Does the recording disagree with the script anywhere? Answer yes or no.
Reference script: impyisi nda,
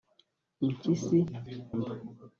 no